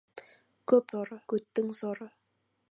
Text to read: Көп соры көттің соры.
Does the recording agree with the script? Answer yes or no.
yes